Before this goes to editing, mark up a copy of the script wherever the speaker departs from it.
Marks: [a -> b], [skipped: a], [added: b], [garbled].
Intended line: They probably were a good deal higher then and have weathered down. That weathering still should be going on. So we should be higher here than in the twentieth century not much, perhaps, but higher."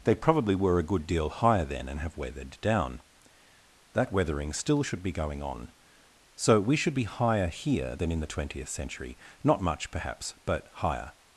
They probably were a good deal higher then and have weathered down. That weathering still should be going on. So we should be higher here than in the twentieth century not much, perhaps, but higher."